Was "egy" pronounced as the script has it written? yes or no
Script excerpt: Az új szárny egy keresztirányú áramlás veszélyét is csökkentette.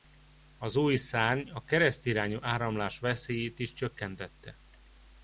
no